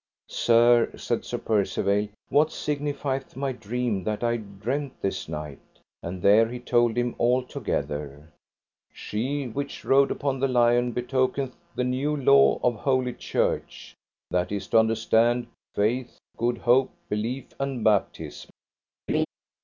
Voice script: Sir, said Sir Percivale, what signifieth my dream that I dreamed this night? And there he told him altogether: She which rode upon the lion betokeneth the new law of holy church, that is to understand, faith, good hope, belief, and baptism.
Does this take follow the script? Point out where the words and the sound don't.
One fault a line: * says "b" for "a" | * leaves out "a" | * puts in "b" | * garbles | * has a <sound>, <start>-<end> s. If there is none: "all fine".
* has a laugh, 19.1-19.3 s